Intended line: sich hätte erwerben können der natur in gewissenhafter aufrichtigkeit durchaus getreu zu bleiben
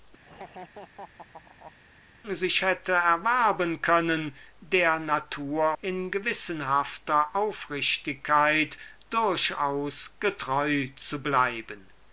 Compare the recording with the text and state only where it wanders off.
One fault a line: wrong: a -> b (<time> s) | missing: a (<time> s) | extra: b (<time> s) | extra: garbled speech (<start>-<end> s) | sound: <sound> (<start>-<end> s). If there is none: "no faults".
sound: laugh (0.2-1.7 s)